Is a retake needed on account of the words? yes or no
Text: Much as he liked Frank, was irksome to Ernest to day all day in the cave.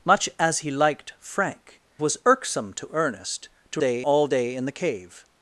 no